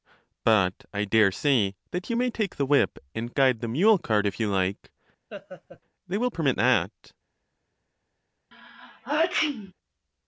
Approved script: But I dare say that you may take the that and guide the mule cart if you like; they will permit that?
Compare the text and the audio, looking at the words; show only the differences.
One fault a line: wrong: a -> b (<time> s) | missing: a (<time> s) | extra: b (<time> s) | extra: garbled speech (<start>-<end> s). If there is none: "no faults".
wrong: that -> whip (2.6 s)